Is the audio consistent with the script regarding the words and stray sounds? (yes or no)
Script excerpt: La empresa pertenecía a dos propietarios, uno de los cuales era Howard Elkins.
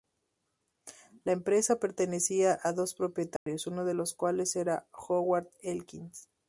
no